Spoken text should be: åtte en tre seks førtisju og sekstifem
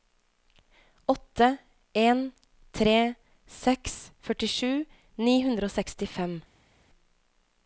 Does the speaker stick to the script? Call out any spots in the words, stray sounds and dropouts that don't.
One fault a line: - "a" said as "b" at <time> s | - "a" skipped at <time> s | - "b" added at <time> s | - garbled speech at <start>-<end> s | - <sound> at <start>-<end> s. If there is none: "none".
- "ni hundre" added at 5.3 s